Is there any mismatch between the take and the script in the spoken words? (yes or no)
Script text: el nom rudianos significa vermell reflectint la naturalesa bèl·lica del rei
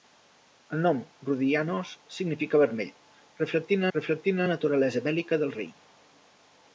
yes